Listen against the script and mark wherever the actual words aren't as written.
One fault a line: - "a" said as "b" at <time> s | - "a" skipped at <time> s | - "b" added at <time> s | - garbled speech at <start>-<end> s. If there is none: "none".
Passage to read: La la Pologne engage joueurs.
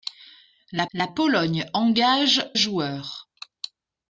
none